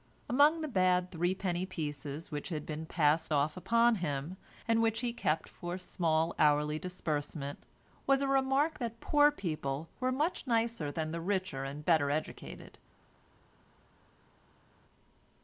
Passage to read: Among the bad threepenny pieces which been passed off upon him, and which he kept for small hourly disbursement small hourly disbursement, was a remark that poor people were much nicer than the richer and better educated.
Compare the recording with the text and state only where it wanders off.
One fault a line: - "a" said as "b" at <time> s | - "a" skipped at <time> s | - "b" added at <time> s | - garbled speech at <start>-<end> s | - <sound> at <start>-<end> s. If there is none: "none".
- "had" added at 2.5 s
- "small hourly disbursement" skipped at 7.6 s